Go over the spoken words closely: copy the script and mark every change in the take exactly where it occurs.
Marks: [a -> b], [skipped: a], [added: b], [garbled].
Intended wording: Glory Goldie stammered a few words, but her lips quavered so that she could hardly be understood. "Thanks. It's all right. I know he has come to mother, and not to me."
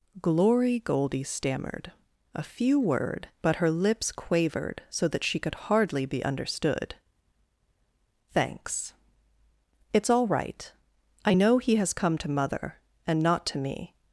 Glory Goldie stammered a few [words, -> word] but her lips quavered so that she could hardly be understood. "Thanks. It's all right. I know he has come to mother, and not to me."